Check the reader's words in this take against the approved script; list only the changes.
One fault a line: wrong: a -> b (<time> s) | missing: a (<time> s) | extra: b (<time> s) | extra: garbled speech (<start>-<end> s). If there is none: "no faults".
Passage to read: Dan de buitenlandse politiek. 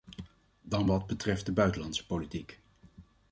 extra: wat betreft (0.9 s)